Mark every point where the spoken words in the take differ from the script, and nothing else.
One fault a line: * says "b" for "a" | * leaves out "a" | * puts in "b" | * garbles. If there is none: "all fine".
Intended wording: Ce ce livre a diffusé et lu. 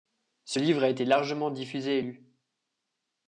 * leaves out "ce"
* puts in "été largement"